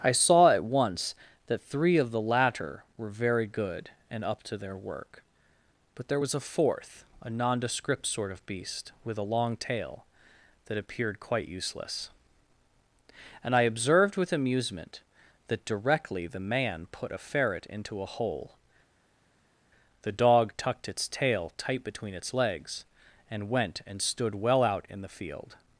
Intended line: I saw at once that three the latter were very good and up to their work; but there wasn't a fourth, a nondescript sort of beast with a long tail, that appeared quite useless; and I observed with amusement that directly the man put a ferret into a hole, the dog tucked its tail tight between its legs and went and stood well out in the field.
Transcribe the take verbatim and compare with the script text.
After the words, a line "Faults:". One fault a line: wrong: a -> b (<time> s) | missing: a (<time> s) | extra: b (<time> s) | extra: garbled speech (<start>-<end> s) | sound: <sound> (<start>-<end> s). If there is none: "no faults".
I saw at once that three of the latter were very good and up to their work; but there was a fourth, a nondescript sort of beast with a long tail, that appeared quite useless; and I observed with amusement that directly the man put a ferret into a hole, the dog tucked its tail tight between its legs and went and stood well out in the field.
Faults:
extra: of (2.0 s)
wrong: wasn't -> was (6.2 s)